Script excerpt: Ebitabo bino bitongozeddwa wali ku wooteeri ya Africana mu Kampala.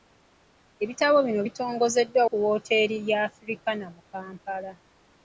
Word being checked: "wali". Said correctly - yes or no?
no